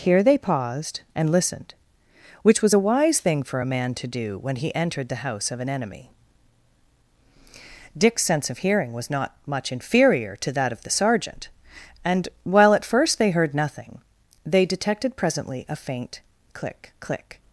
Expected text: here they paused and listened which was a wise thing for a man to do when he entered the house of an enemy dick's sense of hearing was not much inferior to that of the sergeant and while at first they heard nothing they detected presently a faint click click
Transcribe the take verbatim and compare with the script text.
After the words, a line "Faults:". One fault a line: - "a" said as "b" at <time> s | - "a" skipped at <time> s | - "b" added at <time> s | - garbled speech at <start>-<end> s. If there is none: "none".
here they paused and listened which was a wise thing for a man to do when he entered the house of an enemy dick's sense of hearing was not much inferior to that of the sergeant and while at first they heard nothing they detected presently a faint click click
Faults:
none